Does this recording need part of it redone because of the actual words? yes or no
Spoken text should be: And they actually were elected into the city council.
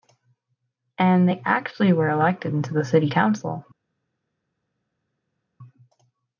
no